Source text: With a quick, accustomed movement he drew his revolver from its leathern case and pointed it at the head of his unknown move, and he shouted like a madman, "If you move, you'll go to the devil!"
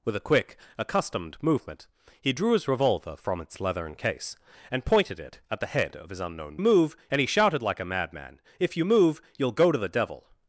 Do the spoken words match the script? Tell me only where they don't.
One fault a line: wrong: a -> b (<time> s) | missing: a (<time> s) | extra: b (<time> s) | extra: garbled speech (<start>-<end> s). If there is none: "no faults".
no faults